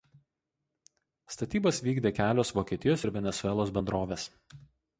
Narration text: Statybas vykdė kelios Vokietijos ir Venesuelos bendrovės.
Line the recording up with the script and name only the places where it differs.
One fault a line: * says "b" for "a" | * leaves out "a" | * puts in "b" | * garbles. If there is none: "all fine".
all fine